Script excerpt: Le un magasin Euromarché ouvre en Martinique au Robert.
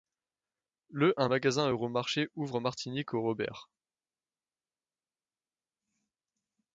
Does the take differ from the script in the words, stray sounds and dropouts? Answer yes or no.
no